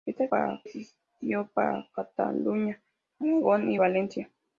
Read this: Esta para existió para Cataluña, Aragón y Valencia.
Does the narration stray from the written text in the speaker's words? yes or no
no